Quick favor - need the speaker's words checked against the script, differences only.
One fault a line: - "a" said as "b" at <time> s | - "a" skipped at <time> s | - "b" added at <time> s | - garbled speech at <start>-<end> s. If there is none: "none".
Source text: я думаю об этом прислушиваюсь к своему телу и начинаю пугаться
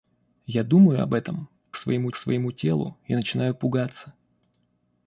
- "прислушиваюсь" said as "своему" at 1.8 s